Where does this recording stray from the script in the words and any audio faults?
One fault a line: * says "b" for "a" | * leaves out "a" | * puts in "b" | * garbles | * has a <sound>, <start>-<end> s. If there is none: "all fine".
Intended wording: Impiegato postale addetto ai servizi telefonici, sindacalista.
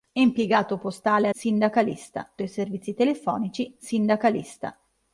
* says "sindacalista" for "addetto"